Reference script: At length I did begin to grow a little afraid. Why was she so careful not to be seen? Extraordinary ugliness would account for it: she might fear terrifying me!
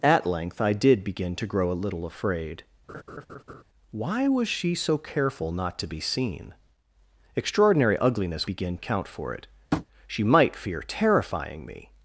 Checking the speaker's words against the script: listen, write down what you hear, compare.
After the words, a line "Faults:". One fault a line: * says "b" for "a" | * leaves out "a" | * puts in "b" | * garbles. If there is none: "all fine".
At length I did begin to grow a little afraid. Why was she so careful not to be seen? Extraordinary ugliness begin account for it: she might fear terrifying me!
Faults:
* says "begin" for "would"